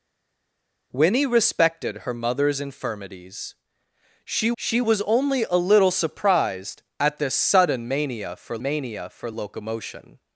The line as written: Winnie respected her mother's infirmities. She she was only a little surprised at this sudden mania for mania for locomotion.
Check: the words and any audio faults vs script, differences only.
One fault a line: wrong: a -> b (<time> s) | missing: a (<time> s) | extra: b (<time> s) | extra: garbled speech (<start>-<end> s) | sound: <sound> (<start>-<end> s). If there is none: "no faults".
no faults